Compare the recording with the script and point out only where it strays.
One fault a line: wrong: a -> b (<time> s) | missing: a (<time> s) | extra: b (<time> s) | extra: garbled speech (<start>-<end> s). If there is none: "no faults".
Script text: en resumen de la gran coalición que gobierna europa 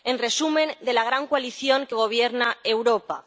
no faults